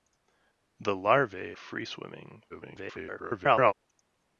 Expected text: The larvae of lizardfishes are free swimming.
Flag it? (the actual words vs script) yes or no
yes